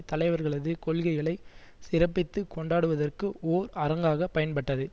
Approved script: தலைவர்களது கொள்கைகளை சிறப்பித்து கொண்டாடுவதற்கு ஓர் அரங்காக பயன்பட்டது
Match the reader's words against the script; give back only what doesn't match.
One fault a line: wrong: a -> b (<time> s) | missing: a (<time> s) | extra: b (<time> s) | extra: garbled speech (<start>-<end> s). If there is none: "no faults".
no faults